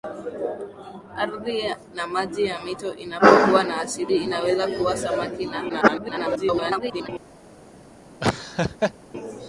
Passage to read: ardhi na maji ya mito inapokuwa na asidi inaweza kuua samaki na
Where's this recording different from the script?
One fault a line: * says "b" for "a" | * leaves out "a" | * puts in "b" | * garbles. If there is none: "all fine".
* garbles